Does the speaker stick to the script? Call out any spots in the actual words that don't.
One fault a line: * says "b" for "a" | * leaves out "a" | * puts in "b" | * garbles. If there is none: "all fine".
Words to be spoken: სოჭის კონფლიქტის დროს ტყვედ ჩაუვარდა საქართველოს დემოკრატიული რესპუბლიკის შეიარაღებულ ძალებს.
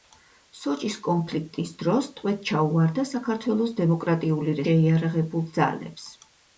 * leaves out "რესპუბლიკის"